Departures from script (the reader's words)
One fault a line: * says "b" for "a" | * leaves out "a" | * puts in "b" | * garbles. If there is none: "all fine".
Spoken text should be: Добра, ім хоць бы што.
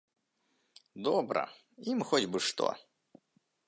all fine